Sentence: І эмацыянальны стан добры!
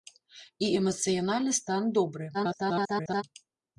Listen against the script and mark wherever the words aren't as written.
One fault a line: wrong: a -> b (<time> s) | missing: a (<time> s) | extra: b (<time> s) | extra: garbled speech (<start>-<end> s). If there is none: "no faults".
extra: garbled speech (2.3-3.2 s)